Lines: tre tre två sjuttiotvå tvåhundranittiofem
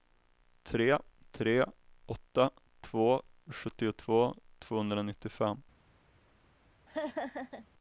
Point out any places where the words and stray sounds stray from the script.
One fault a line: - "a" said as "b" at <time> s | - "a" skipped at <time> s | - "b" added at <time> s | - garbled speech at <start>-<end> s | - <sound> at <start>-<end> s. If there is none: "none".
- "åtta" added at 2.0 s
- laugh at 6.9-7.7 s